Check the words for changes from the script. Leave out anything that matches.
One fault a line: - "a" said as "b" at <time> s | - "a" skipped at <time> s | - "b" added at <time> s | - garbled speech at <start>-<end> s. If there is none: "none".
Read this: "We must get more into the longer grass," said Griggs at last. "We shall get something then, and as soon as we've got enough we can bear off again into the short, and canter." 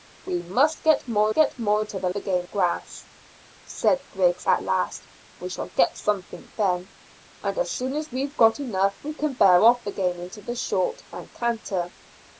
- "get more" added at 1.3 s
- "longer" said as "again" at 2.1 s